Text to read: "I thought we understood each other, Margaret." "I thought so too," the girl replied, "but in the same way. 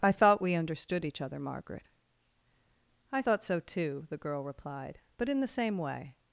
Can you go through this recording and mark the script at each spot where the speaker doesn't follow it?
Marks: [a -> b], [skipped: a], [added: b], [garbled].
"I thought we understood each other, Margaret." "I thought so too," the girl replied, "but in the same way.